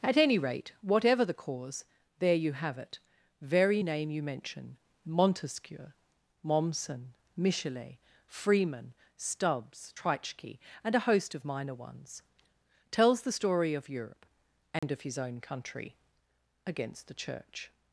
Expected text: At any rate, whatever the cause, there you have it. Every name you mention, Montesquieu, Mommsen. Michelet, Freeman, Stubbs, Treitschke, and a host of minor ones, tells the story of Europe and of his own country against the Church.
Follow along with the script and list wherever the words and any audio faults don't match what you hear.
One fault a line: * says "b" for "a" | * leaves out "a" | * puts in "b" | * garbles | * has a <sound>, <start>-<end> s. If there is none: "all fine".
* says "Very" for "Every"
* has a dropout, 14.8-14.8 s